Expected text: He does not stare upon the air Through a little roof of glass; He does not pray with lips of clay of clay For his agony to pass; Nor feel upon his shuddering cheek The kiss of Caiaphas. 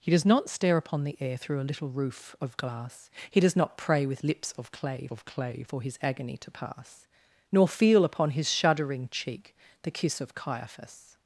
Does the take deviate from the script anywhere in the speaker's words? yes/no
no